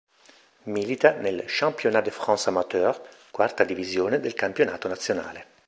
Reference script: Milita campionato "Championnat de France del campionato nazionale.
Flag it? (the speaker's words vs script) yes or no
yes